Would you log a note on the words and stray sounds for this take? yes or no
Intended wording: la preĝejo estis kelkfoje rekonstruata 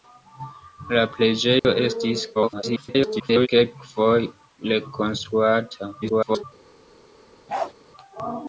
yes